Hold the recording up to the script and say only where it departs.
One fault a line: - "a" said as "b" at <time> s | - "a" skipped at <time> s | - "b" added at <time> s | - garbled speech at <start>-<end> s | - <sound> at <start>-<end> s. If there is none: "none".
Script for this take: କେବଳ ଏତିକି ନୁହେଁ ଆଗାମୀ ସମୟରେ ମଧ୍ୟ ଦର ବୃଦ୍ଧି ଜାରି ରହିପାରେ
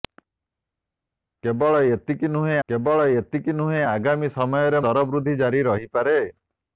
- "କେବଳ ଏତିକି ନୁହେଁ" added at 2.7 s
- "ମଧ୍ୟ" skipped at 4.8 s